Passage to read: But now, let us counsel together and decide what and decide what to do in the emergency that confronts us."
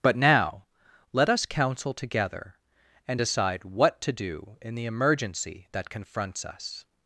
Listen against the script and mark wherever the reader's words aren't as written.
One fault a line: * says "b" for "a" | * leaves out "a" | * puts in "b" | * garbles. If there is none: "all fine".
* leaves out "and decide what"